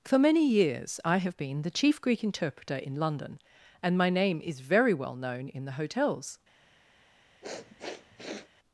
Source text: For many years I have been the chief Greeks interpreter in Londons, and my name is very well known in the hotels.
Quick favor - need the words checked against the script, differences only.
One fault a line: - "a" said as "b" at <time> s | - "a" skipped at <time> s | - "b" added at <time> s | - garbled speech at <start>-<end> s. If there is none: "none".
- "Greeks" said as "Greek" at 2.0 s
- "Londons" said as "London" at 3.0 s